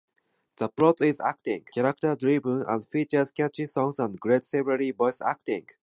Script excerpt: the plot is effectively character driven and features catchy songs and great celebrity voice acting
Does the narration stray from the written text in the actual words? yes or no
yes